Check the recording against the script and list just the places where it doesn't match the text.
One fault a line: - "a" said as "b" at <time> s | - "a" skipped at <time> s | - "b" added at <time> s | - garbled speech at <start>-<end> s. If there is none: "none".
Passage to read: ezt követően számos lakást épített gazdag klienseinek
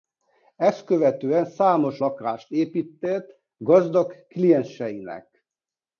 none